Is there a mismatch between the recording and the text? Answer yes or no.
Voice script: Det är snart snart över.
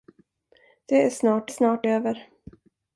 no